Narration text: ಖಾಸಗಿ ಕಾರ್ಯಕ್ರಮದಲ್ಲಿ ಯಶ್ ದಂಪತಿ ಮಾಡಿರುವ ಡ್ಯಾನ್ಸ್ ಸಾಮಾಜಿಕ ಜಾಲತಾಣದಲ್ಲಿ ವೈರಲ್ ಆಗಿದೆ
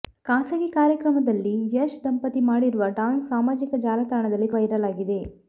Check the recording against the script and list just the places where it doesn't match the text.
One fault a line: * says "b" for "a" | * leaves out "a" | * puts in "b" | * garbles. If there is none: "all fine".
all fine